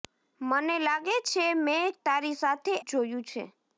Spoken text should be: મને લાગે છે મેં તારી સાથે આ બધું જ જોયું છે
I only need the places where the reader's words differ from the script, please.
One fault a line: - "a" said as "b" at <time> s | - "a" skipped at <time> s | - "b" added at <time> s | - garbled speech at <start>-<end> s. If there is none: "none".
- "આ બધું" skipped at 2.7 s